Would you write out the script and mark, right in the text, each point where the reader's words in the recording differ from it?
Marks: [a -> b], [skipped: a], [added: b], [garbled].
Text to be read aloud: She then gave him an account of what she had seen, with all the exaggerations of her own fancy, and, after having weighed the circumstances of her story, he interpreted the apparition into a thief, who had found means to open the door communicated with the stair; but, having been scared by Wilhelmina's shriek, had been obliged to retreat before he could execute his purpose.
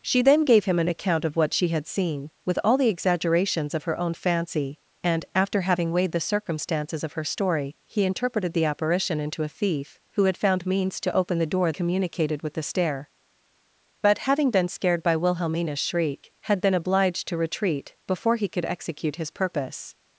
She then gave him an account of what she had seen, with all the exaggerations of her own fancy, and, after having weighed the circumstances of her story, he interpreted the apparition into a thief, who had found means to open the door communicated with the stair; but, having been scared by Wilhelmina's shriek, had been obliged to retreat before he could execute his purpose.